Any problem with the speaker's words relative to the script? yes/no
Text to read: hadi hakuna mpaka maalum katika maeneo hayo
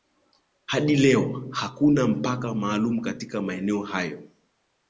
yes